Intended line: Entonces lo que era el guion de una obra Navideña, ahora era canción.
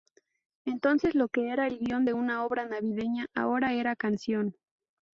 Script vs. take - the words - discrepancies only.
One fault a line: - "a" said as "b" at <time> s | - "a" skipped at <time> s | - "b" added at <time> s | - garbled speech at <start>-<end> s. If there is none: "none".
none